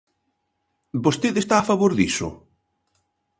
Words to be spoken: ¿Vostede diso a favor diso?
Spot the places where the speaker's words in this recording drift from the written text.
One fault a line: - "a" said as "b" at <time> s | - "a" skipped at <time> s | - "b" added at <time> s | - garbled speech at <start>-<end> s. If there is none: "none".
- "diso" said as "está" at 1.4 s